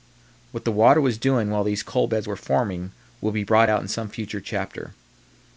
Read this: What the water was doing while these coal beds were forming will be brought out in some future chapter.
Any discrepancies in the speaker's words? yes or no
no